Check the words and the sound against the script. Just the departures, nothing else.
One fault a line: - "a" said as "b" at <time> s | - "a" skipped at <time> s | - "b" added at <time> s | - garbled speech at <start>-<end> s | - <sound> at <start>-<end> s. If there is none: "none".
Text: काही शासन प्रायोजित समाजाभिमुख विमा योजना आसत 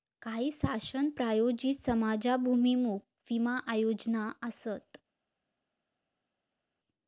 none